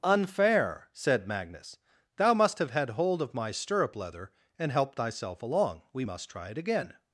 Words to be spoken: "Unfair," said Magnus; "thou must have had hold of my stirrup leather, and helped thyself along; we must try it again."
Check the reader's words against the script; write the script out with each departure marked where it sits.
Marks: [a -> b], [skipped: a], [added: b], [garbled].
"Unfair," said Magnus; "thou must have had hold of my stirrup leather, and helped thyself along; we must try it again."